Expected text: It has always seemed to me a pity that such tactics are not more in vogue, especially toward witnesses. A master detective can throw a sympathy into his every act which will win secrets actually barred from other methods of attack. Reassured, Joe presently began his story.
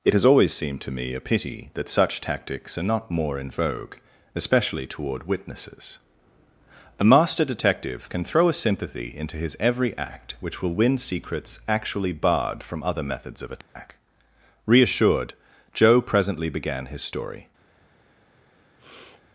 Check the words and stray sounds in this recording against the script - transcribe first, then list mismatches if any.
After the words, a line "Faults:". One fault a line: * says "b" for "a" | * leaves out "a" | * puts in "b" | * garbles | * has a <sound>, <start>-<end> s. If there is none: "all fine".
It has always seemed to me a pity that such tactics are not more in vogue, especially toward witnesses. A master detective can throw a sympathy into his every act which will win secrets actually barred from other methods of attack. Reassured, Joe presently began his story.
Faults:
* has a dropout, 13.6-13.8 s
* has a sniff, 18.8-19.2 s